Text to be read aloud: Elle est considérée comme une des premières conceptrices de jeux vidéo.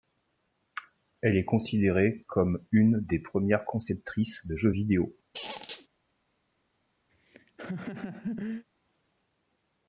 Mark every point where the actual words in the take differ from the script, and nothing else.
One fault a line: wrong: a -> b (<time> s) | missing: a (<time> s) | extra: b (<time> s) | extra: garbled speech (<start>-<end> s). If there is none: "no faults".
no faults